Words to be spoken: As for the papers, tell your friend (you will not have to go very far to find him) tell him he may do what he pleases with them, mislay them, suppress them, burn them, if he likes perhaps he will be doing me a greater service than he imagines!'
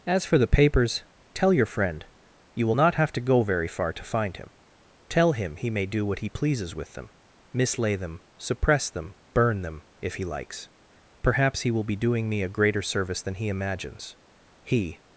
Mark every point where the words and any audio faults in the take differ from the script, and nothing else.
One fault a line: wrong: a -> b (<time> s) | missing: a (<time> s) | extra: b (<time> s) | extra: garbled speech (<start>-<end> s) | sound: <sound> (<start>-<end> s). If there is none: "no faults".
extra: He (14.6 s)